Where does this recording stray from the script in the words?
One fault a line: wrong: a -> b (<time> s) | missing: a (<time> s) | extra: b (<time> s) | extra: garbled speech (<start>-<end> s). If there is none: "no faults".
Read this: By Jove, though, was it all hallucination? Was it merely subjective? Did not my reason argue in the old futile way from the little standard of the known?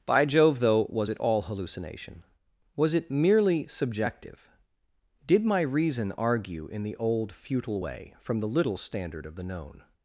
missing: not (5.4 s)